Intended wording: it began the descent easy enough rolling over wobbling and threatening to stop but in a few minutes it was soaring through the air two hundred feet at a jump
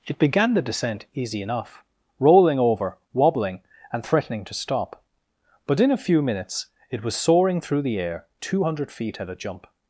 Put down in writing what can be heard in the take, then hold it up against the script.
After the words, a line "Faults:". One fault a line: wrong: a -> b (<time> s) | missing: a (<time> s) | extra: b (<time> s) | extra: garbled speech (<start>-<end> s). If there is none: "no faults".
it began the descent easy enough rolling over wobbling and threatening to stop but in a few minutes it was soaring through the air two hundred feet at a jump
Faults:
no faults